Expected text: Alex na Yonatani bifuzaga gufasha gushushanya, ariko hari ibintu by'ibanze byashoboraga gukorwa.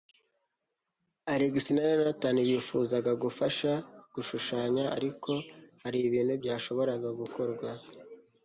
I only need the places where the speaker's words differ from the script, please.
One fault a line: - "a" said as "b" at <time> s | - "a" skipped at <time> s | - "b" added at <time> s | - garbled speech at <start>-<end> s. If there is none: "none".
- "by'ibanze" skipped at 6.3 s